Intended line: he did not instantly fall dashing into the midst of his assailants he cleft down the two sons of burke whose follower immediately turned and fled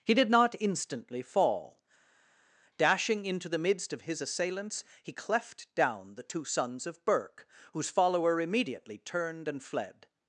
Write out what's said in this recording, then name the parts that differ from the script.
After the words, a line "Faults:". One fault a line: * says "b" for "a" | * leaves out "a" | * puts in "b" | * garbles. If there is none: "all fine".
he did not instantly fall dashing into the midst of his assailants he cleft down the two sons of burke whose follower immediately turned and fled
Faults:
all fine